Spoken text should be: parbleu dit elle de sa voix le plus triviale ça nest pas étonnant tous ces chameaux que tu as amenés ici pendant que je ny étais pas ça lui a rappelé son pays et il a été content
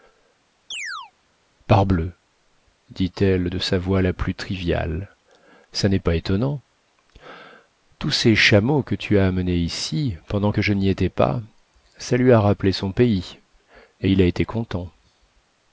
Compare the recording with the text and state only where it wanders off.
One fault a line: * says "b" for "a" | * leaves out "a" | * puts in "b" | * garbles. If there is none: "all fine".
* says "la" for "le"